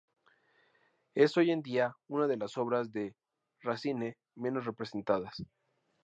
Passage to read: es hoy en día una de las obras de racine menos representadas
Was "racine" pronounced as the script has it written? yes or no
yes